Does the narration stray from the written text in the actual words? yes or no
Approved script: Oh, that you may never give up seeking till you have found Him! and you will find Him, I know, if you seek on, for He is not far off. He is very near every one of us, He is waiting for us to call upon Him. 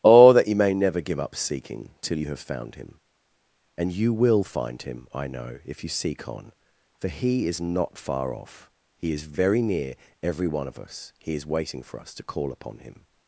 no